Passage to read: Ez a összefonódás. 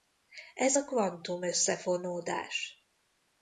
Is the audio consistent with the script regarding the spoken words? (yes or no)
no